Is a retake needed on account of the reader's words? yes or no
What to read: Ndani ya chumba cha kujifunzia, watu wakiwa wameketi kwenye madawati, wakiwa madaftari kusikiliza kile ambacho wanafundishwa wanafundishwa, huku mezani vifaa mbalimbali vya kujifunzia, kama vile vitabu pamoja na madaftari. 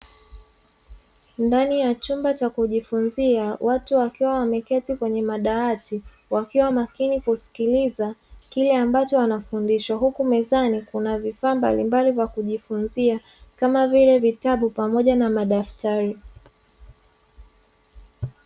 yes